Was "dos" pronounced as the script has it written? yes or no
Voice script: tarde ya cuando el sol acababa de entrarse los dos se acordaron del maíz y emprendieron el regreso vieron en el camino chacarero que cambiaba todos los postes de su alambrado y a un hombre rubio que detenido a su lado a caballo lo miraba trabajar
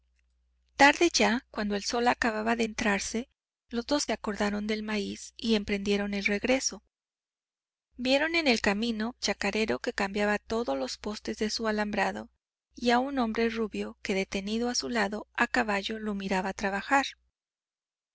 yes